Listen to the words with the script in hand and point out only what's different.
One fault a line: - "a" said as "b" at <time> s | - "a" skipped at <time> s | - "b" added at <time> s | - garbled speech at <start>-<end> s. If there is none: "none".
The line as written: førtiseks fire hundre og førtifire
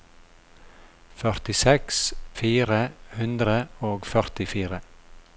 none